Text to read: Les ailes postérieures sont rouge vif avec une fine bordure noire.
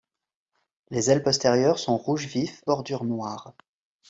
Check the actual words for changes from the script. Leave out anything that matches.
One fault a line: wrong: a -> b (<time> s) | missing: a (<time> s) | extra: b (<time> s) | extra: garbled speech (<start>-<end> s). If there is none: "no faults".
missing: avec une fine (2.6 s)